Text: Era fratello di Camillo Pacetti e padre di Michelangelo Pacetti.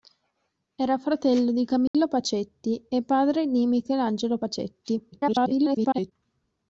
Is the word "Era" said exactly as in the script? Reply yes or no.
yes